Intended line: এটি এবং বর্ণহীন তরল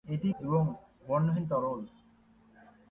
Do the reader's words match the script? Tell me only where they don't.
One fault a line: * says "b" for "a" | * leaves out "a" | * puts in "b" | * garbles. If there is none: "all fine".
all fine